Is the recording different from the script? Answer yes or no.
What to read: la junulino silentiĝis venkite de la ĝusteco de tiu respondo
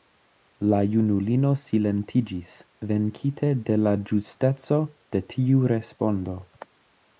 no